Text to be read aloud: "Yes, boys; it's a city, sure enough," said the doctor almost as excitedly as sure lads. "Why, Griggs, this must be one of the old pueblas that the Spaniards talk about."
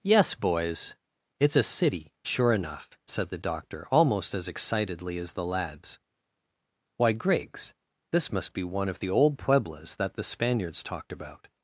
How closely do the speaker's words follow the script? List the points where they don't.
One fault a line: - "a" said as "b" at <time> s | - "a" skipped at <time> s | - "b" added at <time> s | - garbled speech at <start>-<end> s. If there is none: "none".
- "sure" said as "the" at 5.3 s
- "talk" said as "talked" at 10.8 s